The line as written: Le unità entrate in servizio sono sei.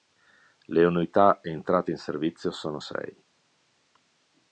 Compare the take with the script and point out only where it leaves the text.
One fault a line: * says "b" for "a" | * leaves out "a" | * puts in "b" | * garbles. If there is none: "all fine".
all fine